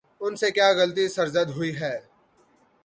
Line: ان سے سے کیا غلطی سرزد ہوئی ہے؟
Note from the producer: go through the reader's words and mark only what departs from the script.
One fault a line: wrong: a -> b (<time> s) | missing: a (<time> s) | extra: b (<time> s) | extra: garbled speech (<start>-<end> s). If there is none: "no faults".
missing: سے (0.5 s)